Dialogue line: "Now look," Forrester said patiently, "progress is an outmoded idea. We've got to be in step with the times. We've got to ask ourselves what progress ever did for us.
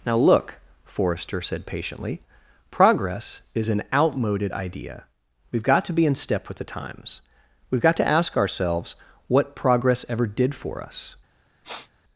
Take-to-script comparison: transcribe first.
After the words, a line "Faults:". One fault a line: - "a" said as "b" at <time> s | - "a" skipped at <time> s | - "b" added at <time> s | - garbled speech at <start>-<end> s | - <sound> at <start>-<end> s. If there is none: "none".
"Now look," Forrester said patiently, "progress is an outmoded idea. We've got to be in step with the times. We've got to ask ourselves what progress ever did for us.
Faults:
- sniff at 11.6-11.9 s